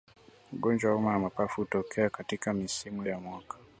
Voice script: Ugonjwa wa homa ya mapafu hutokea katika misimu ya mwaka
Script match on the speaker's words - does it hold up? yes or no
yes